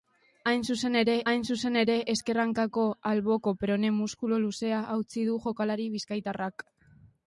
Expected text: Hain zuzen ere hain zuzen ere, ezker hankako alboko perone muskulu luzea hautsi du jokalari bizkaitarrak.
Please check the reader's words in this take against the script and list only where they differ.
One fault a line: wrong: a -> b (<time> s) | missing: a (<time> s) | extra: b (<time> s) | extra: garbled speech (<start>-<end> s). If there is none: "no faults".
no faults